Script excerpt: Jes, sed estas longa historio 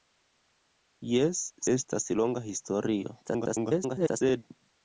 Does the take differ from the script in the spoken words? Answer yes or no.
yes